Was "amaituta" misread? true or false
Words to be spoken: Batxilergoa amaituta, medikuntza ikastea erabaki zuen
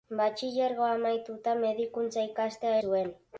false